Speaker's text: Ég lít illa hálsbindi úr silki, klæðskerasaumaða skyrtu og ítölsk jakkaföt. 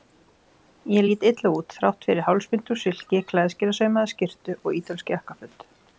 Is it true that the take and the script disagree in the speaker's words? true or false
true